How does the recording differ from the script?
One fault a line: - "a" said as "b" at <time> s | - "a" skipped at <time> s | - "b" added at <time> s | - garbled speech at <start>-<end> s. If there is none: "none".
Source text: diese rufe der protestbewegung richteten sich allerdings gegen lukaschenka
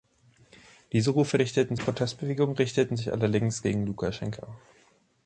- "der" said as "richteten" at 1.4 s